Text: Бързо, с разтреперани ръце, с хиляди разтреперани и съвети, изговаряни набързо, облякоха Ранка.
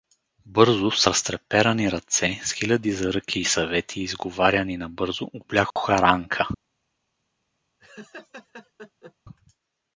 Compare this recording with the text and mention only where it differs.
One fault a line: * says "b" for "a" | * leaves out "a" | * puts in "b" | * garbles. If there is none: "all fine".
* says "заръки" for "разтреперани"